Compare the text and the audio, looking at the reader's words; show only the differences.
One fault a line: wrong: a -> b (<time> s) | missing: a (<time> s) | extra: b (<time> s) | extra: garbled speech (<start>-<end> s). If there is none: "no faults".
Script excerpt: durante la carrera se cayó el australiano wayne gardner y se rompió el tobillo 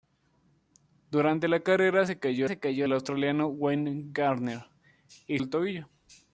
extra: se cayó (2.4 s)
missing: se rompió (5.4 s)